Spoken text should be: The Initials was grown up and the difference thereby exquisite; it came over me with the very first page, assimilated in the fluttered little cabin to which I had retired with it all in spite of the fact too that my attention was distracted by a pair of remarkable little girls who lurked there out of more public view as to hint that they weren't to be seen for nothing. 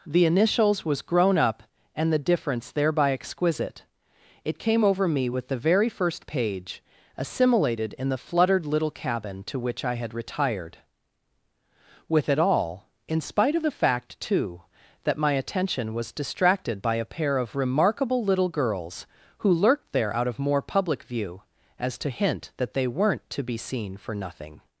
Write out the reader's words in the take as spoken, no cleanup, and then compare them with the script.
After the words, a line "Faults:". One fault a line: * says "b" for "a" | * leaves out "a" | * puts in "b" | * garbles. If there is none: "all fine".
The Initials was grown up and the difference thereby exquisite; it came over me with the very first page, assimilated in the fluttered little cabin to which I had retired with it all in spite of the fact too that my attention was distracted by a pair of remarkable little girls who lurked there out of more public view as to hint that they weren't to be seen for nothing.
Faults:
all fine